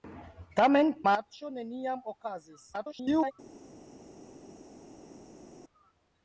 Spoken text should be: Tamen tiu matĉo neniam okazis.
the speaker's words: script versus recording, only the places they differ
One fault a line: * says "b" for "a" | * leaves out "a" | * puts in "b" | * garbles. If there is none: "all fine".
* leaves out "tiu"
* garbles